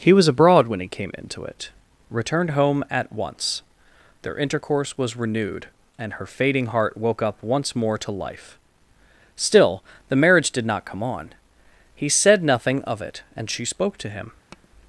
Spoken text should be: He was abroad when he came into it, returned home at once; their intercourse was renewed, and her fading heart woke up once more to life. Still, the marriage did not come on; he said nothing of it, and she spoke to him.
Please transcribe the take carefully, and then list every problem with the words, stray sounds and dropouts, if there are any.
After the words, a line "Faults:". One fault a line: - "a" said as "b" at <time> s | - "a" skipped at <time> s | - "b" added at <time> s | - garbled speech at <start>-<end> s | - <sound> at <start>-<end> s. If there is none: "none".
He was abroad when he came into it, returned home at once; their intercourse was renewed, and her fading heart woke up once more to life. Still, the marriage did not come on; he said nothing of it, and she spoke to him.
Faults:
- tap at 14.5-14.7 s